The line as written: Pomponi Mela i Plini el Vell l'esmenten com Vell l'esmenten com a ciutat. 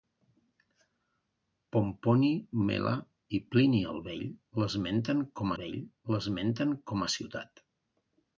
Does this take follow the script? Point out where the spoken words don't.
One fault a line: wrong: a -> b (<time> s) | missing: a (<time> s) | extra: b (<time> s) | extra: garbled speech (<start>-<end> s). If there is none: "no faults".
no faults